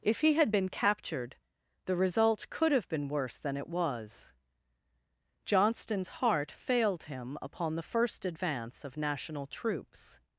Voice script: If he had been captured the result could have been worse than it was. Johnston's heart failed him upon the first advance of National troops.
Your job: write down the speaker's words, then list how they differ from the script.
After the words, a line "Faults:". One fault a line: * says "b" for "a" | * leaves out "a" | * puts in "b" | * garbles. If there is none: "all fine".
If he had been captured the result could have been worse than it was. Johnston's heart failed him upon the first advance of National troops.
Faults:
all fine